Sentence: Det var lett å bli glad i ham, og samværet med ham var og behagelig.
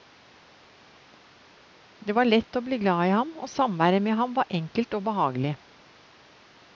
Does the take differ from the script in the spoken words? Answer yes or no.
yes